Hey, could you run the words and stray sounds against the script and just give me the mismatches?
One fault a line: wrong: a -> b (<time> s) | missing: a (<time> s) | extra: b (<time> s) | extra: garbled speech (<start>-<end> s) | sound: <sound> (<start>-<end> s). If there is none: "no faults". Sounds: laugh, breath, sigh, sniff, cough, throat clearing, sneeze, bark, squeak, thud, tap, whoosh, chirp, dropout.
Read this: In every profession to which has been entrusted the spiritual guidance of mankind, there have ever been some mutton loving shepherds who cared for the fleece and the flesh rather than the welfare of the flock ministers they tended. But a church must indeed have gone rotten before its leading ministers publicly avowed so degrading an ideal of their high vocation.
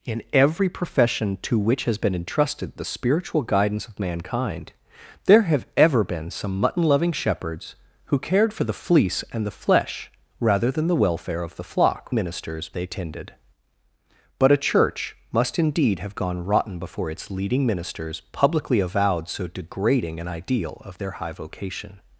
no faults